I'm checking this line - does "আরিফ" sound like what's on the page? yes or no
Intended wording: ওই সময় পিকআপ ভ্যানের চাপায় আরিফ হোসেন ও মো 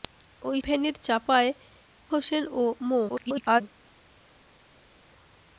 no